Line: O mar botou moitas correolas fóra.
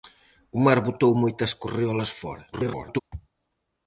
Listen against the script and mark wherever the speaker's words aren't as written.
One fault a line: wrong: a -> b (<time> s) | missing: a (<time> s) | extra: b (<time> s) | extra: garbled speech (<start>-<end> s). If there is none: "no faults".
extra: garbled speech (2.5-3.0 s)